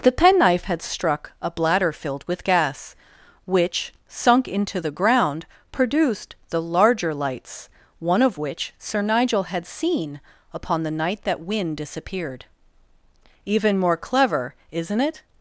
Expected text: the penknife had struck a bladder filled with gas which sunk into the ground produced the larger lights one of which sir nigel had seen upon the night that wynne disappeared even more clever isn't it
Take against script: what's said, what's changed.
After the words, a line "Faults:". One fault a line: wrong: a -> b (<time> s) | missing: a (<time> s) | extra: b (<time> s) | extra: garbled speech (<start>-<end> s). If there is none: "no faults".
the penknife had struck a bladder filled with gas which sunk into the ground produced the larger lights one of which sir nigel had seen upon the night that wynne disappeared even more clever isn't it
Faults:
no faults